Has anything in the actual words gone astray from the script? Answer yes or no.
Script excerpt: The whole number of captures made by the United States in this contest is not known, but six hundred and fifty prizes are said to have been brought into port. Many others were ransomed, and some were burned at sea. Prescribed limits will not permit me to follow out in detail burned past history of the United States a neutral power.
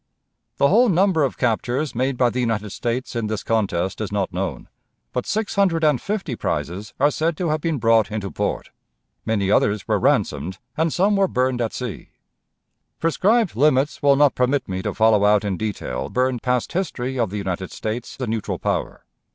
no